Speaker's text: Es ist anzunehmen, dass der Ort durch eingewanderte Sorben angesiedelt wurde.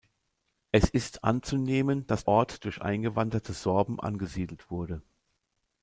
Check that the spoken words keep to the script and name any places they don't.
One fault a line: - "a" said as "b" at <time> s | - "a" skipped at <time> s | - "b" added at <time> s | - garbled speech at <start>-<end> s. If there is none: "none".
- "der" skipped at 2.2 s